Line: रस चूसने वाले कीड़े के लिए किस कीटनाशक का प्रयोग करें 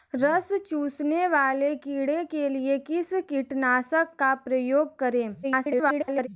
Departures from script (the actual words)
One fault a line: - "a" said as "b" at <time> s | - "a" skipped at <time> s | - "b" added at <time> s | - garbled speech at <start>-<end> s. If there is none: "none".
- garbled speech at 5.4-6.3 s